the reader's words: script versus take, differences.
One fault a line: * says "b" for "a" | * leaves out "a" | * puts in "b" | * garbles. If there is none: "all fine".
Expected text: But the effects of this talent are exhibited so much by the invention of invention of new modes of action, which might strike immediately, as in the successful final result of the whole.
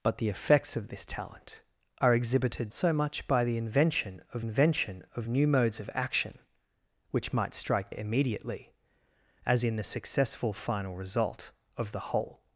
all fine